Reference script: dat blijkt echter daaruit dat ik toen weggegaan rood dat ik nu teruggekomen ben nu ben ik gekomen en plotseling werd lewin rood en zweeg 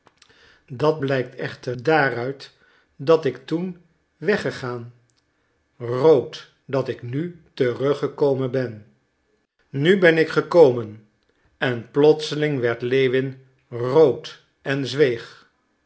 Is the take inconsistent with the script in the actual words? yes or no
no